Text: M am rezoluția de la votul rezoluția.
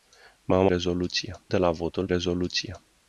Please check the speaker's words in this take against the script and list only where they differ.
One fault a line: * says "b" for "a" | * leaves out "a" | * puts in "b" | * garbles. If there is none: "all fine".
all fine